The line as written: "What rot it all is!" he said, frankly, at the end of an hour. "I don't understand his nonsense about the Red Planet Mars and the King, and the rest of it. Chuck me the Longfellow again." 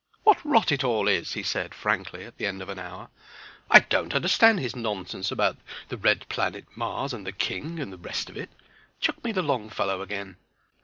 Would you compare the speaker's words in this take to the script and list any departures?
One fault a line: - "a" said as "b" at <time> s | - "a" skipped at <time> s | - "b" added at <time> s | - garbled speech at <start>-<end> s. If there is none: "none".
none